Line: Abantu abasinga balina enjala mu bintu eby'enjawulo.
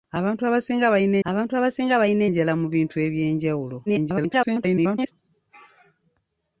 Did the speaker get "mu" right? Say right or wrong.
right